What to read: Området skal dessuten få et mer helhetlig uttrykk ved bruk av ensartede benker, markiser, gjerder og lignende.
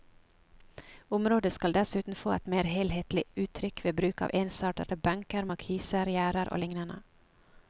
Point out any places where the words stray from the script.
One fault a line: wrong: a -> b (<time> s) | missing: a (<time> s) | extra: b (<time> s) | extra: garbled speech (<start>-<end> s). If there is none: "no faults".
no faults